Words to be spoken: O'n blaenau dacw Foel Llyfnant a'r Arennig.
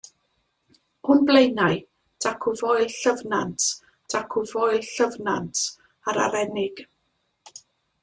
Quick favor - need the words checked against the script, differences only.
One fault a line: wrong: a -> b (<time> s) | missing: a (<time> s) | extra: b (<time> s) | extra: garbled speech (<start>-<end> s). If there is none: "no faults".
extra: dacw Foel Llyfnant (4.1 s)